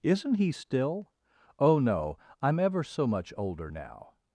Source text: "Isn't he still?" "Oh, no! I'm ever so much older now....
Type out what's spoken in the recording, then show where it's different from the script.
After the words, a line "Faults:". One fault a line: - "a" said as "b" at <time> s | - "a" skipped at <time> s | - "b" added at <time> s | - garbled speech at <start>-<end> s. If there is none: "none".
"Isn't he still?" "Oh, no! I'm ever so much older now....
Faults:
none